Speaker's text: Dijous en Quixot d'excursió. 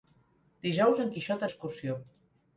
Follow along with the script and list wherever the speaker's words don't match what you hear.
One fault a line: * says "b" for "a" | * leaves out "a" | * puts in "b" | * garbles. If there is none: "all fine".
all fine